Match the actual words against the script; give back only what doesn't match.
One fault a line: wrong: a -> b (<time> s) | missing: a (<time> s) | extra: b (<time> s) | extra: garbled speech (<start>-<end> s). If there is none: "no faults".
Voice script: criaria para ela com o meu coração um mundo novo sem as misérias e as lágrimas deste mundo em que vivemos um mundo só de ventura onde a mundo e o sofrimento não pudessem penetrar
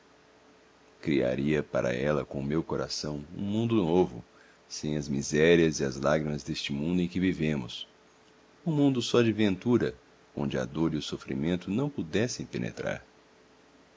wrong: mundo -> dor (10.6 s)